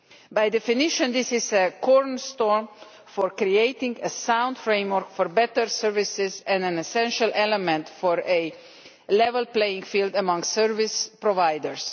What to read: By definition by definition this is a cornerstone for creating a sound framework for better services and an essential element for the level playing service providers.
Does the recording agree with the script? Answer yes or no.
no